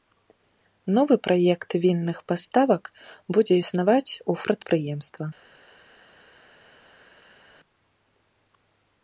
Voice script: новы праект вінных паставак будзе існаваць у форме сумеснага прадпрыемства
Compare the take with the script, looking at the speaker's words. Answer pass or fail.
fail